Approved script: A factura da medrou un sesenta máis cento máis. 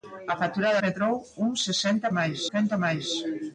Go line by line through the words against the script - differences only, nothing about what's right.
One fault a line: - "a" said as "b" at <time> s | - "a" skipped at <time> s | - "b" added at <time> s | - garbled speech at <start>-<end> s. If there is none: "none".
none